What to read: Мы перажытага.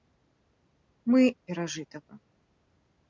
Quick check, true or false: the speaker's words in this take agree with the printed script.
true